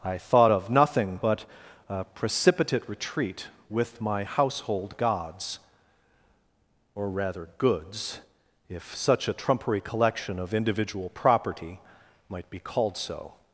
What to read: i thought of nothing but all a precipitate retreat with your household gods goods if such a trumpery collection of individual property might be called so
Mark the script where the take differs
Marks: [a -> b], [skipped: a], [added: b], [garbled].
i thought of nothing but [skipped: all] a precipitate retreat with [your -> my] household gods [added: or rather] goods if such a trumpery collection of individual property might be called so